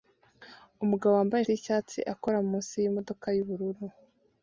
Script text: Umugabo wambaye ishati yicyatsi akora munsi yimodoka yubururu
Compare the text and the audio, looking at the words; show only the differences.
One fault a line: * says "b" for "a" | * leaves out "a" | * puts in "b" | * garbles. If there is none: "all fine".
* leaves out "ishati"